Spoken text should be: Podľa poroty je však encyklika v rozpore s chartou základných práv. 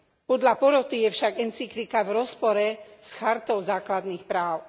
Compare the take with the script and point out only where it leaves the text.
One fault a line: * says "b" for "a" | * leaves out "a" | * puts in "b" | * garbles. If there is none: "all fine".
all fine